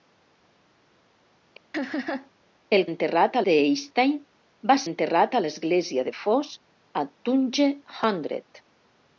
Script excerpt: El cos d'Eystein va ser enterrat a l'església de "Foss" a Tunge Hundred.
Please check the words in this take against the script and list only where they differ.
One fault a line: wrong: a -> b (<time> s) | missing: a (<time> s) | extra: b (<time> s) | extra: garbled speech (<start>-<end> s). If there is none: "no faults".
wrong: cos -> enterrat (2.9 s)
missing: ser (4.8 s)